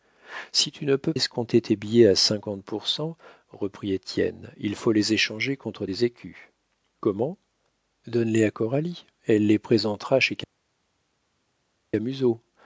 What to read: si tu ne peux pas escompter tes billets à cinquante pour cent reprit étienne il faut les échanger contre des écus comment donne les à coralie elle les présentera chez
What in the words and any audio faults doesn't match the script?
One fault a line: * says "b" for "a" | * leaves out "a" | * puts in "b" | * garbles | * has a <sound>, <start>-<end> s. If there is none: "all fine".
* leaves out "pas"